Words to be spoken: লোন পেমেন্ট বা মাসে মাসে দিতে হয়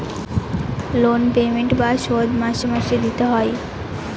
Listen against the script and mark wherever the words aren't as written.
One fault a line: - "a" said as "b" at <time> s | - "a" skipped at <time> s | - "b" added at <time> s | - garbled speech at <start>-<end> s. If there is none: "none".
- "শোধ" added at 2.0 s